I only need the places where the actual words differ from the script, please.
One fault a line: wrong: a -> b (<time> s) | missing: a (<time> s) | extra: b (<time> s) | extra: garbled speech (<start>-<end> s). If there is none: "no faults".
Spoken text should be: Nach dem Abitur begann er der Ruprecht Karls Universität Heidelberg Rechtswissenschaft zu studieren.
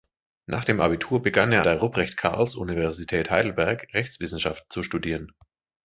no faults